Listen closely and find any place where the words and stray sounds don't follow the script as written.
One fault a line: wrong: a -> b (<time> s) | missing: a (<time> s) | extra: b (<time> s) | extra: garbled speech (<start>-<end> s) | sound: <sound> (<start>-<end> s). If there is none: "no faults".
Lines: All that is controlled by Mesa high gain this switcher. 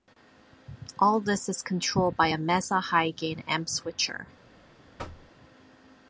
wrong: that -> this (1.2 s)
extra: a (2.3 s)
wrong: this -> amp (3.5 s)
sound: thud (5.0-5.3 s)